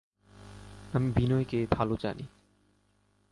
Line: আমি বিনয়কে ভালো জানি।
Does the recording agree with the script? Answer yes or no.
yes